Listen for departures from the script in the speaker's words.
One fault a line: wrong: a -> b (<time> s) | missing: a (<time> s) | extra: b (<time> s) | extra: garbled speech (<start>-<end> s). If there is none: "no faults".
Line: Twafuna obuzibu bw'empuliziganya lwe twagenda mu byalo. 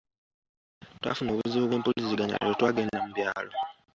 no faults